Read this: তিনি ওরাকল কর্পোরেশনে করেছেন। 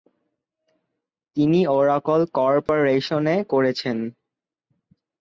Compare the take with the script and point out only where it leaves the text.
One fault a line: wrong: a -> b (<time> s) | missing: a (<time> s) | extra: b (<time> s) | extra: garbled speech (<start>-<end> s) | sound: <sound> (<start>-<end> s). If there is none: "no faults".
sound: dropout (2.7-2.7 s)